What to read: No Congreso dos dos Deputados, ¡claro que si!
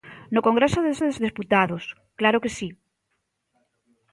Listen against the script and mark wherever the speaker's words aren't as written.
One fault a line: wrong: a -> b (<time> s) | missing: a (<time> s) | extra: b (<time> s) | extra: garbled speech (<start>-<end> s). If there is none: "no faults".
no faults